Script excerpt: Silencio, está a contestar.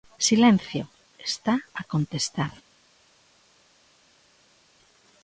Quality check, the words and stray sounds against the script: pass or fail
pass